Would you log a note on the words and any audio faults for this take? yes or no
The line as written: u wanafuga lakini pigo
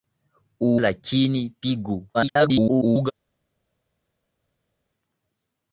yes